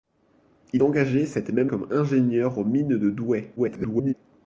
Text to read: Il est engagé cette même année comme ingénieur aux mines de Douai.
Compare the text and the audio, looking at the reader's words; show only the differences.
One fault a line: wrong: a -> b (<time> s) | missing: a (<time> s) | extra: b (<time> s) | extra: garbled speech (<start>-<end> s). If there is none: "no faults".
missing: est (0.8 s)
missing: année (1.7 s)
extra: garbled speech (3.6-4.1 s)